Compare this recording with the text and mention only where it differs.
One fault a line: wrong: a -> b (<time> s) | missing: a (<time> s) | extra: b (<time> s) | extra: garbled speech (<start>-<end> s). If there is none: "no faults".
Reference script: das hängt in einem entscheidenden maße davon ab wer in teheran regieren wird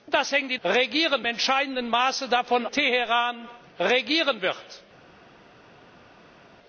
wrong: einem -> regieren (0.6 s)
missing: ab wer in (2.7 s)